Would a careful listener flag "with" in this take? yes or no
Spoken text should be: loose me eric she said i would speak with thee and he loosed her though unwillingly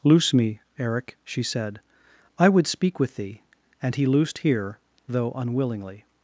no